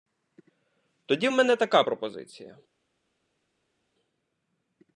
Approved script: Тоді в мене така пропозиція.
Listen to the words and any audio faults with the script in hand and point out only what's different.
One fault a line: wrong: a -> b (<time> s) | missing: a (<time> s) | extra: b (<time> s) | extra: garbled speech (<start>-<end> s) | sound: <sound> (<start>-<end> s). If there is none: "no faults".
no faults